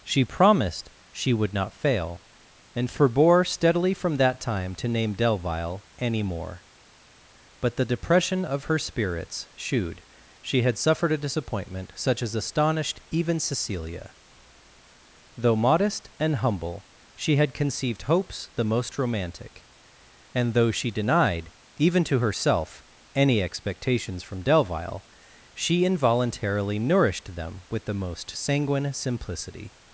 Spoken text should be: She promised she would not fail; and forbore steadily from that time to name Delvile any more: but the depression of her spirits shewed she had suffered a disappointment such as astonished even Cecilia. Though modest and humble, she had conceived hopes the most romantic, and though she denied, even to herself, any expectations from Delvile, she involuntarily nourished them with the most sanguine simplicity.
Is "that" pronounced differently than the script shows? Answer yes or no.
no